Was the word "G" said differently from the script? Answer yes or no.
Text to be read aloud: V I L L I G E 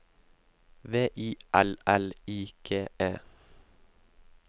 no